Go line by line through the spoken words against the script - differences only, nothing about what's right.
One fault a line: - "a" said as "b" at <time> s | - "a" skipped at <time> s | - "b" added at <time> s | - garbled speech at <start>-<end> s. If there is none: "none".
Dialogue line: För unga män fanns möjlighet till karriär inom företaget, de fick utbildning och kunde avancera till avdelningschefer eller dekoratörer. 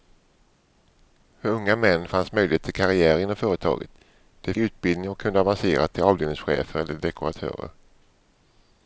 - "fick" skipped at 4.5 s